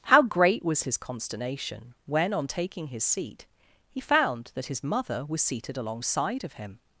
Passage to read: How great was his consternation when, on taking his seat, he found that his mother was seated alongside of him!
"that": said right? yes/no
yes